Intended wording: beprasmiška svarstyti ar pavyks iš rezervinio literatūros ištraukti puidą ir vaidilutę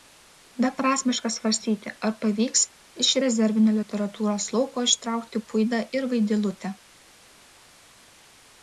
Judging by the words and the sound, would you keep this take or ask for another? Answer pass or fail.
fail